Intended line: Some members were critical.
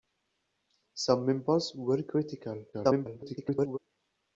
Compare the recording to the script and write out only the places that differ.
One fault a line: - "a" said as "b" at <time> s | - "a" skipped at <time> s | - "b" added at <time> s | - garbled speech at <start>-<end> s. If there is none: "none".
- garbled speech at 2.7-3.8 s